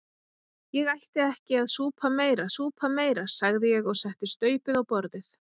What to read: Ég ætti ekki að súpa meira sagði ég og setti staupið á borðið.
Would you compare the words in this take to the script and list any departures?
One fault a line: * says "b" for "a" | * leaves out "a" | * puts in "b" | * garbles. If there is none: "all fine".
* puts in "súpa meira"